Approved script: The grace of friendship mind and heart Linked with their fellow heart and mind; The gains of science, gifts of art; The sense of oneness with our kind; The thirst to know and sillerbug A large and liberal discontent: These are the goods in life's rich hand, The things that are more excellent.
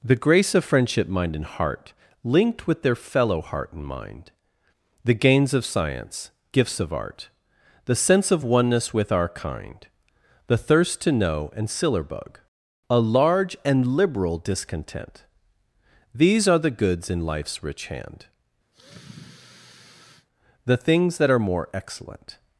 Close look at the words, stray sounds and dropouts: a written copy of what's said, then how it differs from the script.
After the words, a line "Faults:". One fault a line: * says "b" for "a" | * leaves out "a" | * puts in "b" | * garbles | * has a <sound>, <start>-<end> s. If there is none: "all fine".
The grace of friendship mind and heart Linked with their fellow heart and mind; The gains of science, gifts of art; The sense of oneness with our kind; The thirst to know and sillerbug A large and liberal discontent: These are the goods in life's rich hand, The things that are more excellent.
Faults:
* has a sigh, 18.7-20.3 s